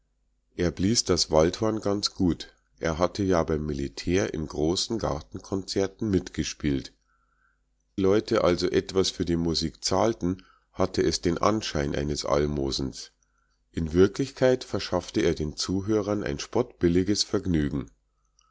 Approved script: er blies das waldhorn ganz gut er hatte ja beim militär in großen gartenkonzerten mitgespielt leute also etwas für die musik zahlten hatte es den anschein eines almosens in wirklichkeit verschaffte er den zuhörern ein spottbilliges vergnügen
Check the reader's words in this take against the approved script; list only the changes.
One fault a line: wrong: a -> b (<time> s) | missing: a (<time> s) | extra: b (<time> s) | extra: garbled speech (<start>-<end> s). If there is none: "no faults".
no faults